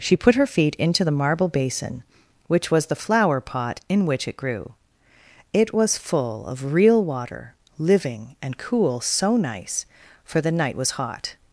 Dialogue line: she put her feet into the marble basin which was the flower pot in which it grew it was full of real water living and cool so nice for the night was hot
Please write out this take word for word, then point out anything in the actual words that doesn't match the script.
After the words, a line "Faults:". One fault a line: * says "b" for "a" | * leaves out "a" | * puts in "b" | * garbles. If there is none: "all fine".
she put her feet into the marble basin which was the flower pot in which it grew it was full of real water living and cool so nice for the night was hot
Faults:
all fine